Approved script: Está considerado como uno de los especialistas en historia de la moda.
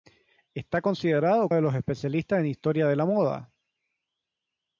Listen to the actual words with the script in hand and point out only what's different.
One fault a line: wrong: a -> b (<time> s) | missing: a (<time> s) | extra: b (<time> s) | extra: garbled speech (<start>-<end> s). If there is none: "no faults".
missing: como uno (1.5 s)